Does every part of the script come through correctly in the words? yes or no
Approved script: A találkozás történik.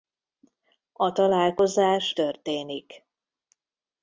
yes